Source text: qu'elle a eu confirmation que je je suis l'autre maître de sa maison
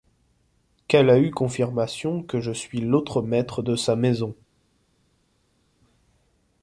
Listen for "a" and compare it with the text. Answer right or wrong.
right